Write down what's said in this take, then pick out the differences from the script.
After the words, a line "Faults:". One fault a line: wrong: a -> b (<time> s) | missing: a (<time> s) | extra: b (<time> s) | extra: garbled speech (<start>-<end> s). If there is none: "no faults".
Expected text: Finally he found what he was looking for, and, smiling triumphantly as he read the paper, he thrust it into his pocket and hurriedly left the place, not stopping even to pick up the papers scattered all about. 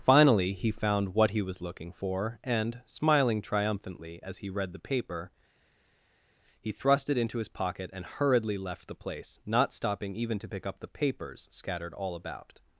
Finally he found what he was looking for, and, smiling triumphantly as he read the paper, he thrust it into his pocket and hurriedly left the place, not stopping even to pick up the papers scattered all about.
Faults:
no faults